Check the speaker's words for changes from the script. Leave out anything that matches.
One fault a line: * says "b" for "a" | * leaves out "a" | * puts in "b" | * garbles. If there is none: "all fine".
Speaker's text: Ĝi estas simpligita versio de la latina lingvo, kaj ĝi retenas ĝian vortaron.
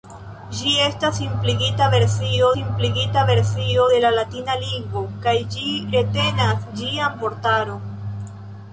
* puts in "simpligita versio"